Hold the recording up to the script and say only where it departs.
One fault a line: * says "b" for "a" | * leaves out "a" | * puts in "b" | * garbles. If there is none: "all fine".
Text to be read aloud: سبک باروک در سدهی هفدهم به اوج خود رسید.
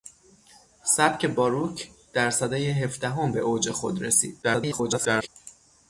* garbles